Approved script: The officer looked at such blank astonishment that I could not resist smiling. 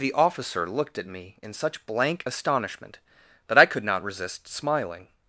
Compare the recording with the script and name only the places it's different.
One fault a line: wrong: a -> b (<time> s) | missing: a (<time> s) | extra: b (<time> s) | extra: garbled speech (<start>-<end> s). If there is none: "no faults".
extra: me in (1.1 s)